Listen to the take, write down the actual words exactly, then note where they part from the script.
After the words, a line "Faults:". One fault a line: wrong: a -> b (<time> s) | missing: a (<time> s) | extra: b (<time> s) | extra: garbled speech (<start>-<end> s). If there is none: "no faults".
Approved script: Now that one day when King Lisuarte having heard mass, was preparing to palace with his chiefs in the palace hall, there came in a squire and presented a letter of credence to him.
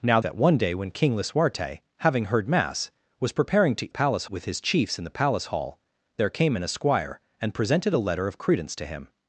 Now that one day when King Lisuarte having heard mass, was preparing to palace with his chiefs in the palace hall, there came in a squire and presented a letter of credence to him.
Faults:
no faults